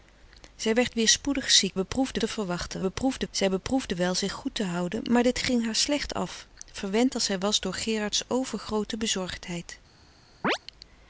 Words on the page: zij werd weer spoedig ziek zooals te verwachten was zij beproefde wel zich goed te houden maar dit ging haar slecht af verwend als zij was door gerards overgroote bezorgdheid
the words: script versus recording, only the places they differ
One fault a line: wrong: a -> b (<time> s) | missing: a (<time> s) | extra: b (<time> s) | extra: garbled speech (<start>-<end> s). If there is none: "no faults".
wrong: zooals -> beproefde (1.7 s)
wrong: was -> beproefde (2.8 s)